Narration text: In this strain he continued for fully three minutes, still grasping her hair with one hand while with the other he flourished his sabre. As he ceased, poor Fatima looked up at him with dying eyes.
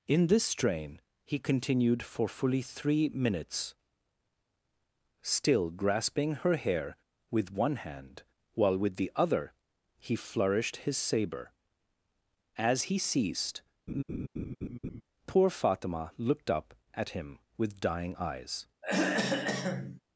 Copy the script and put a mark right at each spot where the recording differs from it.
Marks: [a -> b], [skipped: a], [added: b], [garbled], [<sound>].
In this strain he continued for fully three minutes, still grasping her hair with one hand while with the other he flourished his sabre. As he ceased, [laugh] poor Fatima looked up at him with dying eyes. [throat clearing]